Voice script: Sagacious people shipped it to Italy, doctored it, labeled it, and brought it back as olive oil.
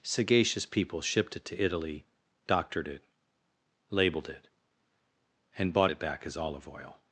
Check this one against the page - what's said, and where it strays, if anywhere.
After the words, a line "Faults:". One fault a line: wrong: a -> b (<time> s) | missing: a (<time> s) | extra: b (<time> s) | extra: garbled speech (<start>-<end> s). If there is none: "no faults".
Sagacious people shipped it to Italy, doctored it, labeled it, and bought it back as olive oil.
Faults:
wrong: brought -> bought (5.7 s)